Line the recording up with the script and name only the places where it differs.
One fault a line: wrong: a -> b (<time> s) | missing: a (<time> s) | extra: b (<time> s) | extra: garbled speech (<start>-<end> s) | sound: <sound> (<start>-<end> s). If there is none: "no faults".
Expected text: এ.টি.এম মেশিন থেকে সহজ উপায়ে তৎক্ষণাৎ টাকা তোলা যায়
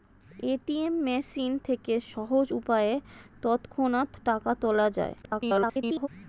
extra: garbled speech (5.2-6.1 s)